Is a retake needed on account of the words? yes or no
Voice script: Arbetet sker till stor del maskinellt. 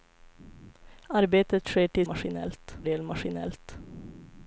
yes